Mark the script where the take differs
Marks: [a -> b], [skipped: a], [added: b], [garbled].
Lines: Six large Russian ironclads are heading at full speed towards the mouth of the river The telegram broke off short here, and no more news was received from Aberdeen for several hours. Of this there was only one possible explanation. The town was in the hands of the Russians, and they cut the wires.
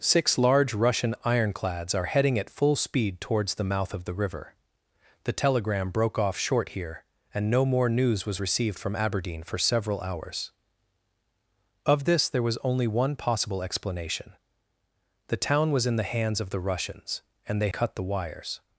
Six large Russian ironclads are heading at full speed towards the mouth of the river The telegram broke off short here, and no more news was received from Aberdeen for several hours. Of this there was only one possible explanation. The town was in the hands of the Russians, and they cut the wires.